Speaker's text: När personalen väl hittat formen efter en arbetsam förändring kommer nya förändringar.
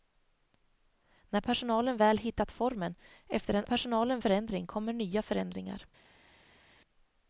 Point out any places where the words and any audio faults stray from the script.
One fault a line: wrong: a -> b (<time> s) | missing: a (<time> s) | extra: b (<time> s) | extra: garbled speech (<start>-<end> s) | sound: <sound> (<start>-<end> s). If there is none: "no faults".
wrong: arbetsam -> personalen (3.6 s)